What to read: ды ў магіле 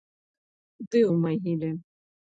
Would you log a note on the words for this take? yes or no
no